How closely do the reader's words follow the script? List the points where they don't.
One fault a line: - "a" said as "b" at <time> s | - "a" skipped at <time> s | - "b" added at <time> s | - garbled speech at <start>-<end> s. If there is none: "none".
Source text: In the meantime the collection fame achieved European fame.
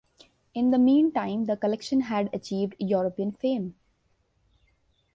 - "fame" said as "had" at 2.0 s